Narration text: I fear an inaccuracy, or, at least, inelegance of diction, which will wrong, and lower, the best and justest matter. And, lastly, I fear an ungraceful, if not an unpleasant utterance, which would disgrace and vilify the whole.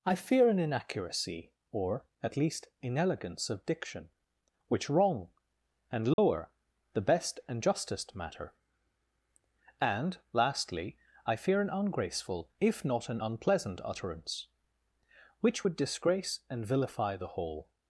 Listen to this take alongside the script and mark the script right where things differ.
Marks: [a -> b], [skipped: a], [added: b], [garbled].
I fear an inaccuracy, or, at least, inelegance of diction, which [skipped: will] wrong, and lower, the best and justest matter. And, lastly, I fear an ungraceful, if not an unpleasant utterance, which would disgrace and vilify the whole.